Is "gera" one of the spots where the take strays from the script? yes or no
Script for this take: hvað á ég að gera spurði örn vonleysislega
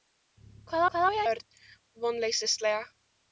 yes